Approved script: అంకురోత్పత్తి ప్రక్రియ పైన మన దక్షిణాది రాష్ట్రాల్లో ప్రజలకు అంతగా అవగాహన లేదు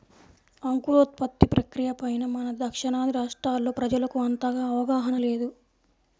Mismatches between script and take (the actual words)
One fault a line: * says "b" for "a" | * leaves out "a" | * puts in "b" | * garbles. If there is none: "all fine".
all fine